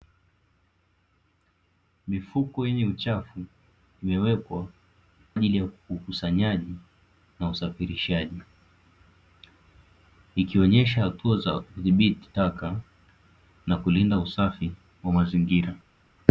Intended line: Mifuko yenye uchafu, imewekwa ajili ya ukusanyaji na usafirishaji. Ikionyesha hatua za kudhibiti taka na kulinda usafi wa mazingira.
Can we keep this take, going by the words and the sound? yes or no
yes